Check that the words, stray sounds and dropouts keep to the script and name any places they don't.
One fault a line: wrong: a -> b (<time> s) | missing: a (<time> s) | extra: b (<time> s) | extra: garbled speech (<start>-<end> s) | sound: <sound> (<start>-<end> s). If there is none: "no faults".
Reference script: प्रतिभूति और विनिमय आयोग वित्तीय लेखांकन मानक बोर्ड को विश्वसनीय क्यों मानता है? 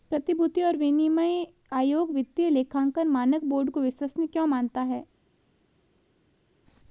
no faults